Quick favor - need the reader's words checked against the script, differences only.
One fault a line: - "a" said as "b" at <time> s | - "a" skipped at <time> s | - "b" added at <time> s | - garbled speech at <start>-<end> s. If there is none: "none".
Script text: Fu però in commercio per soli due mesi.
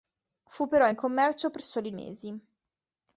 - "due" skipped at 1.9 s